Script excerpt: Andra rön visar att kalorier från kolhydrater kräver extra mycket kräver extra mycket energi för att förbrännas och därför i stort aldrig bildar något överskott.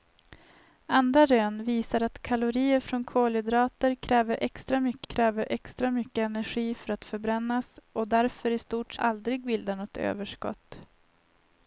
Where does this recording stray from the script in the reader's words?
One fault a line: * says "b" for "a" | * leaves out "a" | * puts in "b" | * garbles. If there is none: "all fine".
all fine